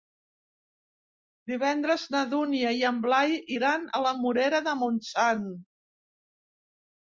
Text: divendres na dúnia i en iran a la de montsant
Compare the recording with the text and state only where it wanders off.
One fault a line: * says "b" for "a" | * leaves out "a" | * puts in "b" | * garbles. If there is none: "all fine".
* puts in "blai"
* puts in "morera"